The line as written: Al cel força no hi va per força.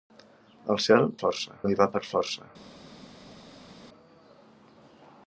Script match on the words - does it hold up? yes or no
yes